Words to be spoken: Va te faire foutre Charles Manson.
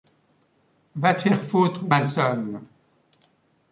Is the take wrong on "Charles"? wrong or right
wrong